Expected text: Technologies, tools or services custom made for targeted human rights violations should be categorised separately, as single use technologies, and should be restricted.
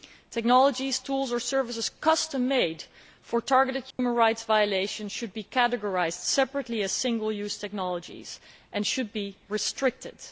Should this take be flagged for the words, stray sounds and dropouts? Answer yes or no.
yes